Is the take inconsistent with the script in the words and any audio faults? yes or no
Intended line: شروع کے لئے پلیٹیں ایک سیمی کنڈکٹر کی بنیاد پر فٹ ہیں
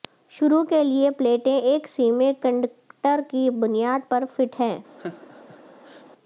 yes